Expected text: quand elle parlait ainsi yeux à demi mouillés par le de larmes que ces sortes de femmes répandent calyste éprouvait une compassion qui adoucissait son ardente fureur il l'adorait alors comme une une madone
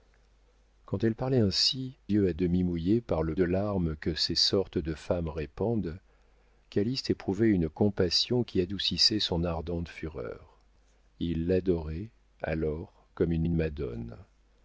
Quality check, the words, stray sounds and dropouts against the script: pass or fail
pass